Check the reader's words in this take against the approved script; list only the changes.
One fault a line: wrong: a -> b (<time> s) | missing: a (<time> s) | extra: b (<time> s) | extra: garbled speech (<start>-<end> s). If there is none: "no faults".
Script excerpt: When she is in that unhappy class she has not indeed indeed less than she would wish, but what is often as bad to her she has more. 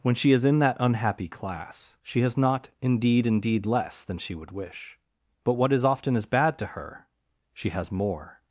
no faults